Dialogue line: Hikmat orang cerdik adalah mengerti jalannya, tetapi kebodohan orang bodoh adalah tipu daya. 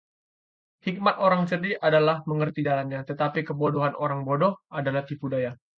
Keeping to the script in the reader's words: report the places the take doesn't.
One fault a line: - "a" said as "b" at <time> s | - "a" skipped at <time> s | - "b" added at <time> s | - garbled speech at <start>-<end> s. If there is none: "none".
none